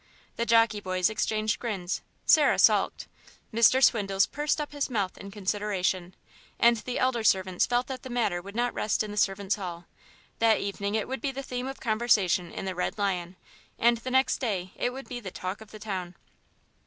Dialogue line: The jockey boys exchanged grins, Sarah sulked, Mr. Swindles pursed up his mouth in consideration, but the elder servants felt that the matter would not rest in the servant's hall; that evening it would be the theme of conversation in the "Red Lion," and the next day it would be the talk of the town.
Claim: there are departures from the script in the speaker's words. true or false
true